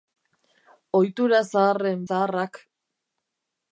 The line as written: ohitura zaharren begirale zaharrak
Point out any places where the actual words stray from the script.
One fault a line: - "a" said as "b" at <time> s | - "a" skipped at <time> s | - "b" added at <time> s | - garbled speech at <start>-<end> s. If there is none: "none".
- "begirale" skipped at 2.0 s